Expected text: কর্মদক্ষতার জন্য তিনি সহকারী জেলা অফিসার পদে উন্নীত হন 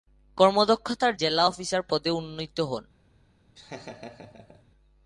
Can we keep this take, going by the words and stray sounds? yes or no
no